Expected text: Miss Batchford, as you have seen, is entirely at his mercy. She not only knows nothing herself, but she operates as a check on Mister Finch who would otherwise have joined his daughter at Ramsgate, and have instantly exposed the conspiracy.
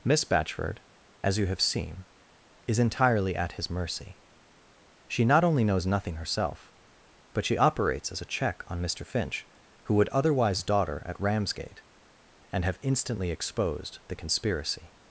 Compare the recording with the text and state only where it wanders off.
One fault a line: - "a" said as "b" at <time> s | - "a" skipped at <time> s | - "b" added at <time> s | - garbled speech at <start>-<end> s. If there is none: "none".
- "have joined his" skipped at 10.6 s